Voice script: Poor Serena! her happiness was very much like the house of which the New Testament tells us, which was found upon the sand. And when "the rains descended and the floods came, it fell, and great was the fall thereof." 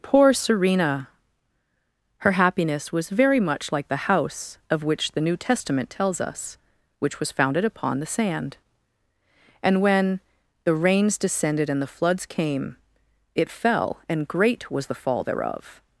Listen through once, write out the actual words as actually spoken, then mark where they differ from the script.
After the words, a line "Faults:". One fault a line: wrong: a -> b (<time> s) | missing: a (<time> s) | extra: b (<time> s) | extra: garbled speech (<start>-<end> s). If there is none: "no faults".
Poor Serena! her happiness was very much like the house of which the New Testament tells us, which was founded upon the sand. And when "the rains descended and the floods came, it fell, and great was the fall thereof."
Faults:
wrong: found -> founded (7.3 s)